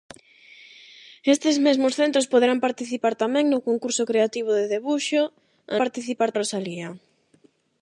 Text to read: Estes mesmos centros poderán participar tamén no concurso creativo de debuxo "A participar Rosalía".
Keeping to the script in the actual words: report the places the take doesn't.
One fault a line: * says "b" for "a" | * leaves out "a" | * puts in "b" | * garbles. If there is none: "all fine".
all fine